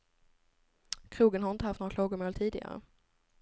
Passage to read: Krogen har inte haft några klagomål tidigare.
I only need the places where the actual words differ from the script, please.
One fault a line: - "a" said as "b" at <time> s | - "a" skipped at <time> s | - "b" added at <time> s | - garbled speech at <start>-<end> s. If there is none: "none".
none